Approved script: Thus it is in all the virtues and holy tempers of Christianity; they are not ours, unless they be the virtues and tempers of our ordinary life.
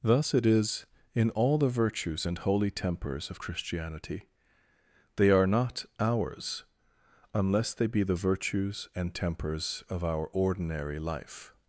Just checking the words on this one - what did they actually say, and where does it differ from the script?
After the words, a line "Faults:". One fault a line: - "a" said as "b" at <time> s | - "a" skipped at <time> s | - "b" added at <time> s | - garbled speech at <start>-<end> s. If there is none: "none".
Thus it is in all the virtues and holy tempers of Christianity; they are not ours, unless they be the virtues and tempers of our ordinary life.
Faults:
none